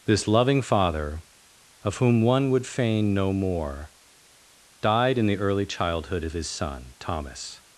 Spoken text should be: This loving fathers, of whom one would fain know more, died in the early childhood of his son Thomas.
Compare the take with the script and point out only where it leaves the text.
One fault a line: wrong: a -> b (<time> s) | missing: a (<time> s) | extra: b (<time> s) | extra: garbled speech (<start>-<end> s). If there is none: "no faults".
wrong: fathers -> father (0.6 s)